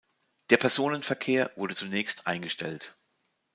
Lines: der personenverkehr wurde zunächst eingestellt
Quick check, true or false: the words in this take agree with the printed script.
true